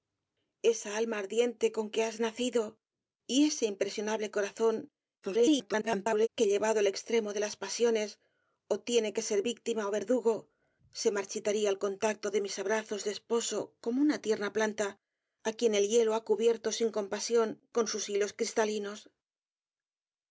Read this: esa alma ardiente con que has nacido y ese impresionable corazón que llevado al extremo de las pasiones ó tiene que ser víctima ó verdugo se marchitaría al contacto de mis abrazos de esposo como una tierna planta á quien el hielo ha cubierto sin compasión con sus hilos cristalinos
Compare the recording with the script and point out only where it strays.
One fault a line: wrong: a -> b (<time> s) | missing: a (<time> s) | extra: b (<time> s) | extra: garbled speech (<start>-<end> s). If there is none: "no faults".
extra: garbled speech (5.2-6.3 s)